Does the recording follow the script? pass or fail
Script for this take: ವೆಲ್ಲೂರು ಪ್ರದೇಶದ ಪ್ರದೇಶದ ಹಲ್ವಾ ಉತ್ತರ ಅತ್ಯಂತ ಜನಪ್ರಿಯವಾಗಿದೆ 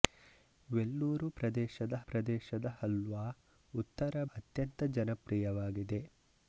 pass